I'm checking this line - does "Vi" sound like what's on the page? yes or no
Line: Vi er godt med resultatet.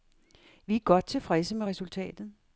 yes